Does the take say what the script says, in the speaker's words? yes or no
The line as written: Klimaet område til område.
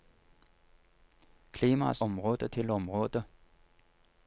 yes